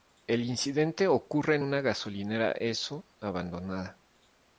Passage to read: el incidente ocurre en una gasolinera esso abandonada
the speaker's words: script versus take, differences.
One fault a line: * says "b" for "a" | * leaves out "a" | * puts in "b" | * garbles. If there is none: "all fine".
all fine